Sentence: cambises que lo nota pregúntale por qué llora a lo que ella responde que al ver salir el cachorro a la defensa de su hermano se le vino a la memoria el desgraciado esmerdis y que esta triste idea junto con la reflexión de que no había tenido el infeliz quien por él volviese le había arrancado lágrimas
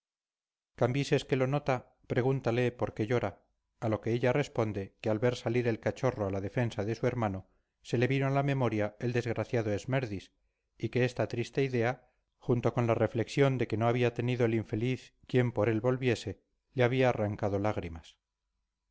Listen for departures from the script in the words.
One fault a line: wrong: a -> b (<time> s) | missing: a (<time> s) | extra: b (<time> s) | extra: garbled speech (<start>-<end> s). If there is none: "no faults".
no faults